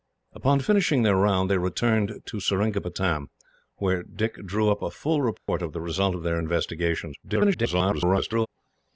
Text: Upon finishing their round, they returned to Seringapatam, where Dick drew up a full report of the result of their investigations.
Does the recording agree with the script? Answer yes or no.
no